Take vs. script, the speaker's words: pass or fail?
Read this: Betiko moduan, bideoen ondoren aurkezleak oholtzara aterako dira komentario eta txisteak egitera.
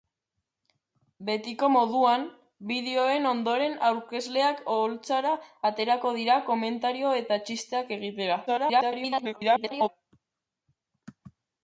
fail